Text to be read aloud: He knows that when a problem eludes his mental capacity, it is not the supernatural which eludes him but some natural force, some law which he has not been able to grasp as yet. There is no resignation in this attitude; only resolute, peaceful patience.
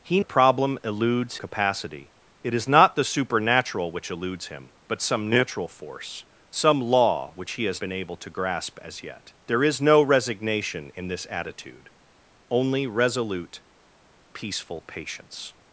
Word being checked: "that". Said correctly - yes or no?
no